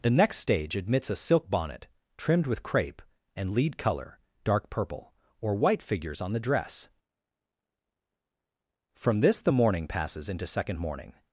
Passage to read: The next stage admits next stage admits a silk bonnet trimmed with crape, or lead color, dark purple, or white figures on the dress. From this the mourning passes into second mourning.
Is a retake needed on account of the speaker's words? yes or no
yes